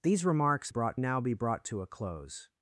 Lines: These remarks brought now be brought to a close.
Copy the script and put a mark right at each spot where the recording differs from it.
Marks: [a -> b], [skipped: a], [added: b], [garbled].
These remarks brought now be brought to a close.